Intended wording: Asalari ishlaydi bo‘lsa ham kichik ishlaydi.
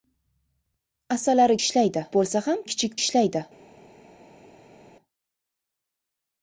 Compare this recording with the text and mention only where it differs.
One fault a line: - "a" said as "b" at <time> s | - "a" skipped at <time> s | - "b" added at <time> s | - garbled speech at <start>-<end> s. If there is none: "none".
none